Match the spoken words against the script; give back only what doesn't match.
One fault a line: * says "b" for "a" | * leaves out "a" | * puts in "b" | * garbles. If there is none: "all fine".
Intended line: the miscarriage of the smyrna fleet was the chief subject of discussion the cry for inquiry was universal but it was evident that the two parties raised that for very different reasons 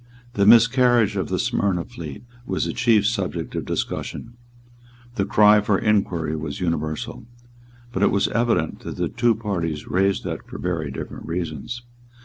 all fine